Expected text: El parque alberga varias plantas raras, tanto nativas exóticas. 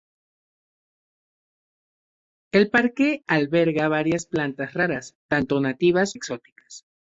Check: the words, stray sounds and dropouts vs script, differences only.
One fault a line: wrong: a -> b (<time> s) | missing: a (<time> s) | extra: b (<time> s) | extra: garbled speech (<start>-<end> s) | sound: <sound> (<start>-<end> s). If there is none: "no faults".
no faults